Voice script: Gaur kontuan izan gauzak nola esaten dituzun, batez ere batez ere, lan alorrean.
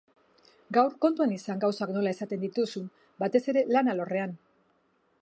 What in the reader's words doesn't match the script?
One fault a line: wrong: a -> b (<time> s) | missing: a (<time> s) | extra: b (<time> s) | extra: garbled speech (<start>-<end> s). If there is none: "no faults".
missing: batez ere (3.6 s)